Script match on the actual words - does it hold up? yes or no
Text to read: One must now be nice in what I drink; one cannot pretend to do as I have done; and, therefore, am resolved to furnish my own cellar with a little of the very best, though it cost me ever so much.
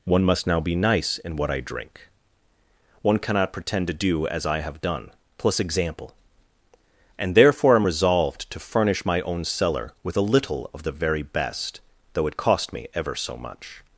no